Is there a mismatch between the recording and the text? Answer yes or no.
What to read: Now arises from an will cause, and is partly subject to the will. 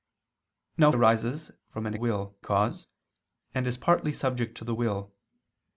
no